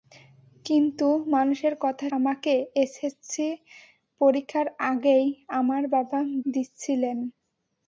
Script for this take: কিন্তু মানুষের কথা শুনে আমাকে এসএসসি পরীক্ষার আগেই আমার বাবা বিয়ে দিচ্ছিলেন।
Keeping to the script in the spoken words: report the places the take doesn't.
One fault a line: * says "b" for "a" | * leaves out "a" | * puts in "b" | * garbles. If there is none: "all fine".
* leaves out "শুনে"
* leaves out "বিয়ে"